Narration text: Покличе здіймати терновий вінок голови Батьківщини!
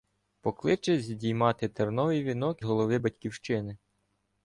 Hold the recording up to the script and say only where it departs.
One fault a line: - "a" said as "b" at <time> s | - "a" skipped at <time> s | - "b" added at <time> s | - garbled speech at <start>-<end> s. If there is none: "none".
none